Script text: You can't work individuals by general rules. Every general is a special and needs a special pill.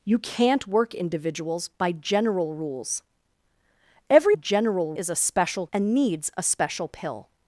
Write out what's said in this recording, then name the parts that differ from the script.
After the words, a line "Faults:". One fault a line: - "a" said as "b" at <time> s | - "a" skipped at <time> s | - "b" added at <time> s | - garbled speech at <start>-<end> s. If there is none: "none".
You can't work individuals by general rules. Every general is a special and needs a special pill.
Faults:
none